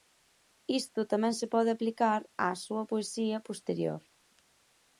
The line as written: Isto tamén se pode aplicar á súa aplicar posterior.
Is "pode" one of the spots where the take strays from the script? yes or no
no